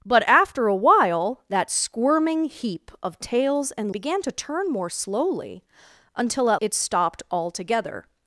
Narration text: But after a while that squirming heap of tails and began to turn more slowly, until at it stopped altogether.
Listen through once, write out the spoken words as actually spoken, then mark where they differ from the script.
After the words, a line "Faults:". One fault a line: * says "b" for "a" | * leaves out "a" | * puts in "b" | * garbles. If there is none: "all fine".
But after a while that squirming heap of tails and began to turn more slowly, until at it stopped altogether.
Faults:
all fine